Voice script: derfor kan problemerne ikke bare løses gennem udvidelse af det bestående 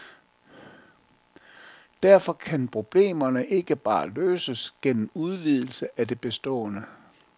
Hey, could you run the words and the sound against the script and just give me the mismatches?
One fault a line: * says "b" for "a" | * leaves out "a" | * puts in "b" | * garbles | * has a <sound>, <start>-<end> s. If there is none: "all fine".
all fine